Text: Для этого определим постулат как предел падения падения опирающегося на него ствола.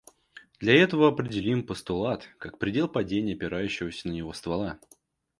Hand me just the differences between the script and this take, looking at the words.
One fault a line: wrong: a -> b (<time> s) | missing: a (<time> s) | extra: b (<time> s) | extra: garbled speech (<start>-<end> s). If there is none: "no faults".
missing: падения (3.4 s)